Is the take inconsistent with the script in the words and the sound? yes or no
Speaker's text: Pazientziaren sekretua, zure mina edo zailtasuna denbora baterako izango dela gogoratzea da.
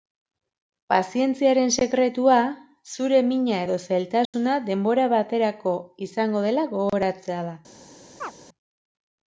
yes